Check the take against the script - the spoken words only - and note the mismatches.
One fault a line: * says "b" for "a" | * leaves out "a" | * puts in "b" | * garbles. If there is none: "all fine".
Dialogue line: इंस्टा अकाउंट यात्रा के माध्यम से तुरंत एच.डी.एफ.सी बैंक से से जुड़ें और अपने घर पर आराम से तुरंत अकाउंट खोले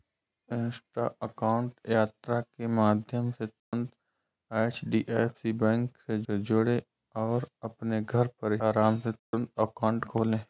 all fine